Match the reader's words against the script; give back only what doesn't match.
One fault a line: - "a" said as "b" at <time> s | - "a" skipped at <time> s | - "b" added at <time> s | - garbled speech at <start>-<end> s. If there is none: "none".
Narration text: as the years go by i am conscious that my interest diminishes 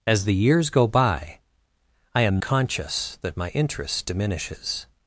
none